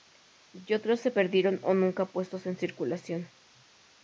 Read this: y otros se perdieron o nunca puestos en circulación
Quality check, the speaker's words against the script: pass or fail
pass